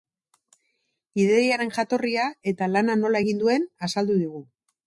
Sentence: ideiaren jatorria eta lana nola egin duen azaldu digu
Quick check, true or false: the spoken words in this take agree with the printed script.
true